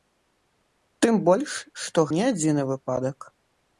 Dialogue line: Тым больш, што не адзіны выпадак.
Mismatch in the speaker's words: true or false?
false